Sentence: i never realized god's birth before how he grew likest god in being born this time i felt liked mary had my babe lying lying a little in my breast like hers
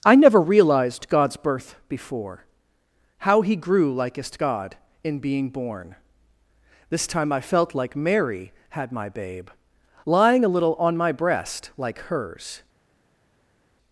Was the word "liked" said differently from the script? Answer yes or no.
yes